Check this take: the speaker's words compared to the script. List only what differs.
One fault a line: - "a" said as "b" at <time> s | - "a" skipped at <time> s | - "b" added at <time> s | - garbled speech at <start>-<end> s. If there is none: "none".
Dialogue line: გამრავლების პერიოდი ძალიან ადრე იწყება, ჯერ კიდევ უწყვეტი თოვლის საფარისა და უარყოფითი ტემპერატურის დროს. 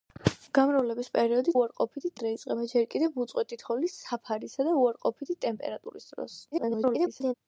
- "ძალიან" said as "უარყოფითი" at 1.6 s
- garbled speech at 6.5-7.3 s